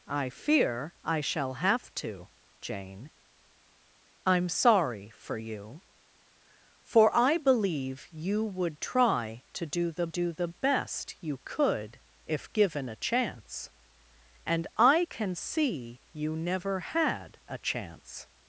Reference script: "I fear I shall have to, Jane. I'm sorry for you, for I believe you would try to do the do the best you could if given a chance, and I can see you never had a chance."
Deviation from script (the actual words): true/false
false